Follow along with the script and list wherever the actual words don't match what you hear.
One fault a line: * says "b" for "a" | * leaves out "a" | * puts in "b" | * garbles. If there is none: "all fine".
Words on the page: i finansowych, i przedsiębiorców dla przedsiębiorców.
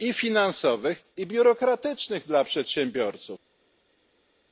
* says "biurokratycznych" for "przedsiębiorców"